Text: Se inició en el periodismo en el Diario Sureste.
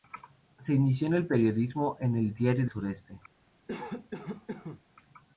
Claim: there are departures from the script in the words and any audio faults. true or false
true